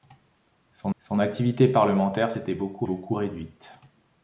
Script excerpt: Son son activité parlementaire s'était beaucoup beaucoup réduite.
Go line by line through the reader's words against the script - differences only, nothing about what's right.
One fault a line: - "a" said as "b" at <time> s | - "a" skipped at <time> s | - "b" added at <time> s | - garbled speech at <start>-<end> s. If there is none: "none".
none